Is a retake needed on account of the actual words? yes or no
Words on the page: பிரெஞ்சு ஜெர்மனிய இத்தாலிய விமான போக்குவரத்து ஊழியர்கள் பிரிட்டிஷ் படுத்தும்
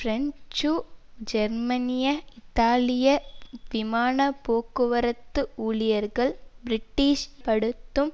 no